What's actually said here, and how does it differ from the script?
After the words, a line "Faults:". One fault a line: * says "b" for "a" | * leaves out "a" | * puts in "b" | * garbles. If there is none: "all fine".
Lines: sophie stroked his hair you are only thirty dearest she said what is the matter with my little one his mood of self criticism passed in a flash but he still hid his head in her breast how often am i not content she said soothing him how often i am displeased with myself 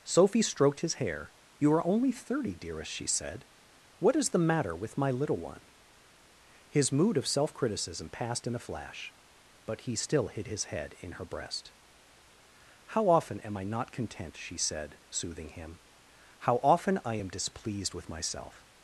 sophie stroked his hair you are only thirty dearest she said what is the matter with my little one his mood of self criticism passed in a flash but he still hid his head in her breast how often am i not content she said soothing him how often i am displeased with myself
Faults:
all fine